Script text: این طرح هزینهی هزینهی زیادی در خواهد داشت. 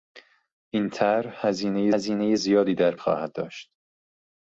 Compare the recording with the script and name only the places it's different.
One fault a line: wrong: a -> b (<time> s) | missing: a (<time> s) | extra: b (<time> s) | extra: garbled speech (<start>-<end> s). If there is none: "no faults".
no faults